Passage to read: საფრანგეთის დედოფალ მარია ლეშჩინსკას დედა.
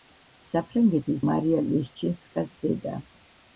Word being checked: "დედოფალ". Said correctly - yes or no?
no